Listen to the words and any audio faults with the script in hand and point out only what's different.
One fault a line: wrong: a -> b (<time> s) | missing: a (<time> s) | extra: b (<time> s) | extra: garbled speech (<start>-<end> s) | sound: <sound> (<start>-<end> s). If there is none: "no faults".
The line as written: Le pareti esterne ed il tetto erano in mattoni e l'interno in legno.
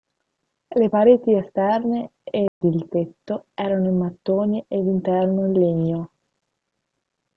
sound: dropout (2.5-2.6 s)